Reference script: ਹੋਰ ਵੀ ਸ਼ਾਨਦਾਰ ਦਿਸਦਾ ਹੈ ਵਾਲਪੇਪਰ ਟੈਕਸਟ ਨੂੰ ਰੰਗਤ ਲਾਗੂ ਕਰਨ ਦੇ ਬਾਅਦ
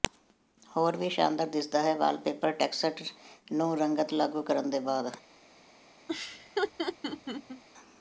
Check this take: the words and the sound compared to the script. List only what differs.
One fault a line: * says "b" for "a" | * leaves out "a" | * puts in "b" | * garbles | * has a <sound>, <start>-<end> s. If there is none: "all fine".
* has a laugh, 6.1-7.6 s